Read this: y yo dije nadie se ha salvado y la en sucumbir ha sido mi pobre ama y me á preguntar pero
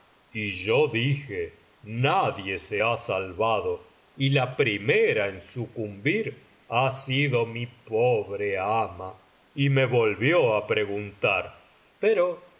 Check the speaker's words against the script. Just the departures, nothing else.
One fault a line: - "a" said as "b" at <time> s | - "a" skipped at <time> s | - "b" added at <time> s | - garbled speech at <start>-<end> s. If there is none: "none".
- "primera" added at 4.6 s
- "volvió" added at 9.8 s